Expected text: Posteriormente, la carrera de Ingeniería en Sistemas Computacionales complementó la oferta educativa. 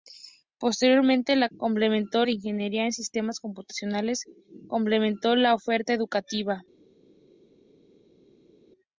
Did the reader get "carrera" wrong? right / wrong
wrong